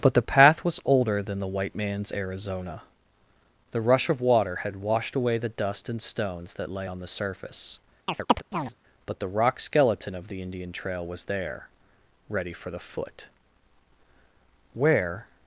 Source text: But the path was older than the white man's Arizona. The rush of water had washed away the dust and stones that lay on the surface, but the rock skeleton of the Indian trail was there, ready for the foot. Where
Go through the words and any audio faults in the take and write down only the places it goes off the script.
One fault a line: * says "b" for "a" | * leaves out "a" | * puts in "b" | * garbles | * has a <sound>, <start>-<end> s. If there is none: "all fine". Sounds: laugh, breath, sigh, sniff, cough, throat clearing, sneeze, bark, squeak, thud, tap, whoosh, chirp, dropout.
* has a chirp, 8.1-8.7 s